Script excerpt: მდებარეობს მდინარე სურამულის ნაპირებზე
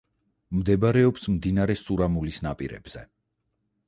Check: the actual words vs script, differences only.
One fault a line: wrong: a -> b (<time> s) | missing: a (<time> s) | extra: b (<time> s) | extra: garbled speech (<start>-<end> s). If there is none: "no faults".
no faults